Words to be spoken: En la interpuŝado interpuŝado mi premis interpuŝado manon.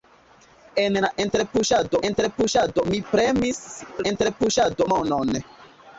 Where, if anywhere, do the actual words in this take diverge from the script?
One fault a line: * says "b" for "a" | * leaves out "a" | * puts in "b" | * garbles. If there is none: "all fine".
all fine